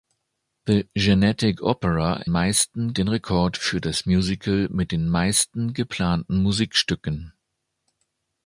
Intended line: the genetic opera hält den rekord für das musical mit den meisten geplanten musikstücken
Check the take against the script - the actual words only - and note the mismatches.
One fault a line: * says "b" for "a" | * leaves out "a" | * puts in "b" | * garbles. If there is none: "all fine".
* says "meisten" for "hält"